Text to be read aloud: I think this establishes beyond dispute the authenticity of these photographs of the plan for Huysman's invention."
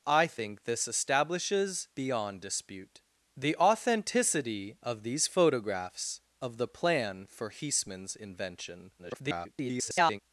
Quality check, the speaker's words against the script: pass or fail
fail